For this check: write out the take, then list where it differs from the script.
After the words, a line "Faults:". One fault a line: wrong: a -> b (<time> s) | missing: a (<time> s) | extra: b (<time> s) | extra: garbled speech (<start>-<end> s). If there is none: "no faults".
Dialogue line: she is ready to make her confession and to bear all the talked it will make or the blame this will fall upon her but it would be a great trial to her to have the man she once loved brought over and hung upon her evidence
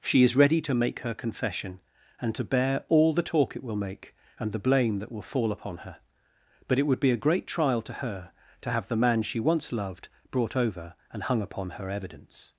she is ready to make her confession and to bear all the talk it will make and the blame that will fall upon her but it would be a great trial to her to have the man she once loved brought over and hung upon her evidence
Faults:
wrong: talked -> talk (3.2 s)
wrong: or -> and (4.4 s)
wrong: this -> that (5.0 s)